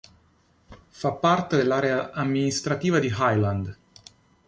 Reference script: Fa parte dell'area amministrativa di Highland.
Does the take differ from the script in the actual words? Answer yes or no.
no